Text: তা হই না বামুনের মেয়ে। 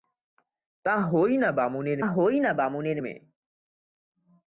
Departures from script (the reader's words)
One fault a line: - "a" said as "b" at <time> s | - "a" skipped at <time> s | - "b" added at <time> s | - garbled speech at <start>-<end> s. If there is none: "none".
- "হই না বামুনের" added at 2.1 s